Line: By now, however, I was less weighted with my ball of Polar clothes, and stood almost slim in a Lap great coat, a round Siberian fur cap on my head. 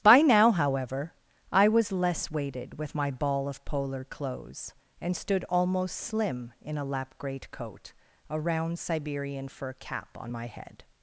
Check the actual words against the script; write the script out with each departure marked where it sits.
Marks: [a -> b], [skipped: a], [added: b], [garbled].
By now, however, I was less weighted with my ball of Polar clothes, and stood almost slim in a Lap great coat, a round Siberian fur cap on my head.